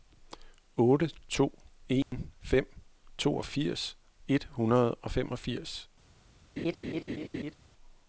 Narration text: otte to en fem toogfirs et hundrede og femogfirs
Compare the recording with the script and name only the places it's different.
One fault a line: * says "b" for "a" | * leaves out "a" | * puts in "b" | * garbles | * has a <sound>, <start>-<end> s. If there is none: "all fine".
* has a dropout, 2.0-2.1 s
* has a laugh, 6.6-7.5 s